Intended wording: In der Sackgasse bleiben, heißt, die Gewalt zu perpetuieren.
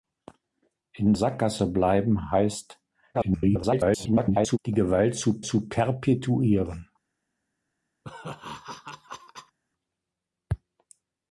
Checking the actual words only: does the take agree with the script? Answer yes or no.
no